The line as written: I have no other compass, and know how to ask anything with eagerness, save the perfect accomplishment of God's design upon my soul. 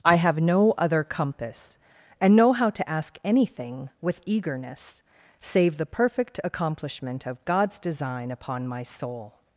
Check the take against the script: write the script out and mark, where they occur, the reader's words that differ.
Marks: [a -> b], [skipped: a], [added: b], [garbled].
I have no other compass, and know how to ask anything with eagerness, save the perfect accomplishment of God's design upon my soul.